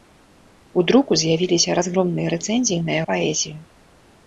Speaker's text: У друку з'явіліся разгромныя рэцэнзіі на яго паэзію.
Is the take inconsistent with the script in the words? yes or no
yes